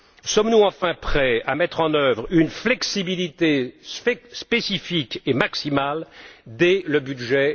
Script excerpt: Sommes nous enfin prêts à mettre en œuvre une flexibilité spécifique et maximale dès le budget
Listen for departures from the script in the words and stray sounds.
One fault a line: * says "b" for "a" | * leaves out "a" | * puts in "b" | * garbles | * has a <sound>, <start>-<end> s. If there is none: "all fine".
all fine